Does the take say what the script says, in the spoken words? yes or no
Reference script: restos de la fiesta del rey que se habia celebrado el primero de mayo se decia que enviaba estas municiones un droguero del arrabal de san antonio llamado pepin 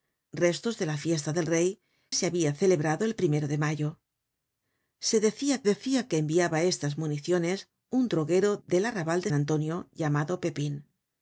no